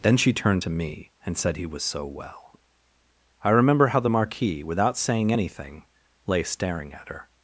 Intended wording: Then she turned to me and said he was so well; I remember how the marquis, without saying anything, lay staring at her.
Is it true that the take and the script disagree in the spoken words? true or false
false